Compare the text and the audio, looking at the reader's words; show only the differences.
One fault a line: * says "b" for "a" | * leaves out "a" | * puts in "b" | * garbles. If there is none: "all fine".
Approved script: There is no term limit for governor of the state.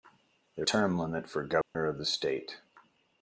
* leaves out "is no"